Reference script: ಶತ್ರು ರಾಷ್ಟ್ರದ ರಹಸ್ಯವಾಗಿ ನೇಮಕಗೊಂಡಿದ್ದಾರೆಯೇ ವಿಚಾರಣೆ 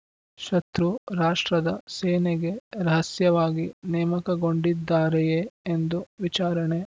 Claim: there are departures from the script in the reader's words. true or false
true